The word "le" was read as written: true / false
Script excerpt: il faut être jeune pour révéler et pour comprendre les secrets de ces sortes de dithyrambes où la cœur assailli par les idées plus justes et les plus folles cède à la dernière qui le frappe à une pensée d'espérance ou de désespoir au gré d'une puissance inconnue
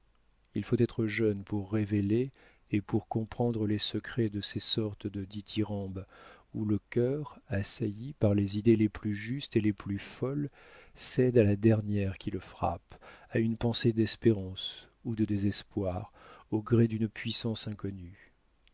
true